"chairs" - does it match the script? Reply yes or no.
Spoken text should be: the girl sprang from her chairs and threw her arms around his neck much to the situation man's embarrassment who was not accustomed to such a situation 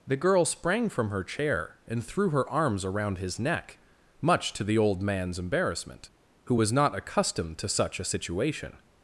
no